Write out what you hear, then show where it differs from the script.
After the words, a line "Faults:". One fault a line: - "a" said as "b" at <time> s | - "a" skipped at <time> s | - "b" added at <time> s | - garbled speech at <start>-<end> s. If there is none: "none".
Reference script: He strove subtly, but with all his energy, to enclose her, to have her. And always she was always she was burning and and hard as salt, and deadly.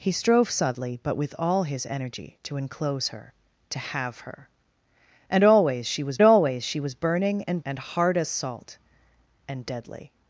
He strove subtly, but with all his energy, to enclose her, to have her. And always she was always she was burning and and hard as salt, and deadly.
Faults:
none